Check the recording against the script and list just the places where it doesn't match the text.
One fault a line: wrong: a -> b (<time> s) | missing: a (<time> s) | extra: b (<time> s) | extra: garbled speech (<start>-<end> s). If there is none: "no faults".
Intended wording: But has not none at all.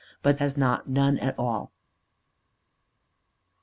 no faults